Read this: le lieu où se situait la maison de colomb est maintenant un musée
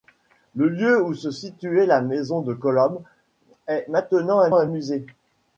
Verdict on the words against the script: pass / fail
fail